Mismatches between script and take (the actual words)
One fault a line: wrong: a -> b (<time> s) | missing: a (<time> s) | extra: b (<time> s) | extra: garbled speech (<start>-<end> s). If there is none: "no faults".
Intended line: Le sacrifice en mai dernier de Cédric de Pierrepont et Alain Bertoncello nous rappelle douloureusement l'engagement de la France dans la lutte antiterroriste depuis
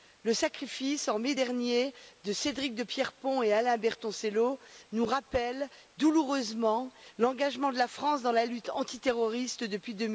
no faults